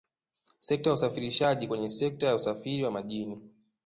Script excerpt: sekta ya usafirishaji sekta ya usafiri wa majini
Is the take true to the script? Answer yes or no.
no